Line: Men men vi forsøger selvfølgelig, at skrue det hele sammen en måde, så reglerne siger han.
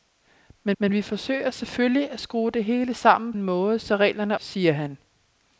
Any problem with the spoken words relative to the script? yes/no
no